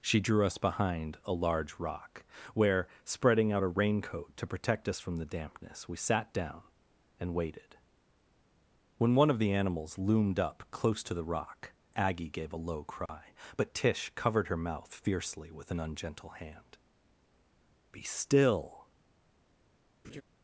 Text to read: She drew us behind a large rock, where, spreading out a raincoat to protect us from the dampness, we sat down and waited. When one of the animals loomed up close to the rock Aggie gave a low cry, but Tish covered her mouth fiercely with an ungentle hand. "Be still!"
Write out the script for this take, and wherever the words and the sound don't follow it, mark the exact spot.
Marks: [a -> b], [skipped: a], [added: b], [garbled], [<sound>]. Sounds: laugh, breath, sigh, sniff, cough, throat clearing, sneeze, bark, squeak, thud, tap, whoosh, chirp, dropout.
She drew us behind a large rock, where, spreading out a raincoat to protect us from the dampness, we sat down and waited. When one of the animals loomed up close to the rock Aggie gave a low cry, [dropout] but Tish covered her mouth fiercely with an ungentle hand. "Be still!" [laugh]